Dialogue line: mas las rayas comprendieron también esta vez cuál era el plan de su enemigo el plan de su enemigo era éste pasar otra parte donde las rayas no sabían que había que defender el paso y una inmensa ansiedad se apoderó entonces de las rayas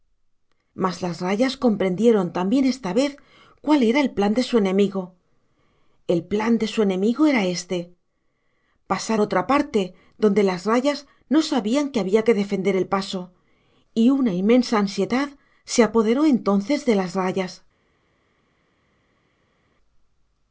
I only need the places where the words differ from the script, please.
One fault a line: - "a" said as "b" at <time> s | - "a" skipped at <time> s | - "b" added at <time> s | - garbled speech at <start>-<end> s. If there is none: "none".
none